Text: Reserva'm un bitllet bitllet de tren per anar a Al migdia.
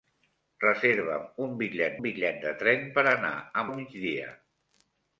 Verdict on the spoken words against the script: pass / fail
pass